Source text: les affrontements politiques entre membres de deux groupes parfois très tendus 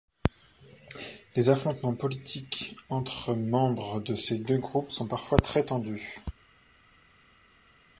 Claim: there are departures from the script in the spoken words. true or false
true